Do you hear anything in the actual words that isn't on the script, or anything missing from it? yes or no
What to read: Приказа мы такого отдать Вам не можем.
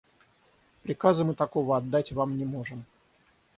no